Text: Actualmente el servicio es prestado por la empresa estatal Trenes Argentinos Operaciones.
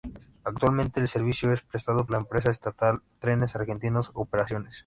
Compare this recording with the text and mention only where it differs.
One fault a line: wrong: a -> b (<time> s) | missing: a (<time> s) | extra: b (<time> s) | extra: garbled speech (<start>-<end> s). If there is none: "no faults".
missing: por (2.1 s)